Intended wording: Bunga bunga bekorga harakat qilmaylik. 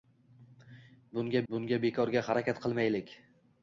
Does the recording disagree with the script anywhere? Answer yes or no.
no